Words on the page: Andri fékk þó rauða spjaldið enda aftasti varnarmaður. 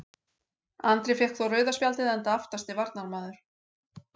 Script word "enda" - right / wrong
right